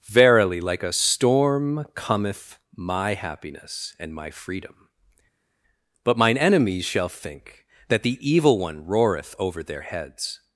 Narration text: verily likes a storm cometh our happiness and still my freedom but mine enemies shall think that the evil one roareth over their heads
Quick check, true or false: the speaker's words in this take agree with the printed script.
false